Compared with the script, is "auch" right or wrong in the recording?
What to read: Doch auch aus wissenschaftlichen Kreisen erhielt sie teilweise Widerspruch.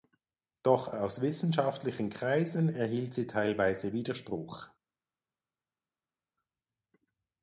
wrong